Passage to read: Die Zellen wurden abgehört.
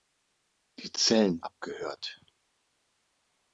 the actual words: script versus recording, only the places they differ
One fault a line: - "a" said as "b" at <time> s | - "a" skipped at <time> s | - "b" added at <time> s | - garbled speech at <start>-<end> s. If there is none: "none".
- "wurden" skipped at 1.4 s